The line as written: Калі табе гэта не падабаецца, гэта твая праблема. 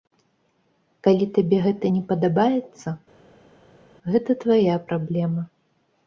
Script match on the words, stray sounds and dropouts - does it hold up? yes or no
yes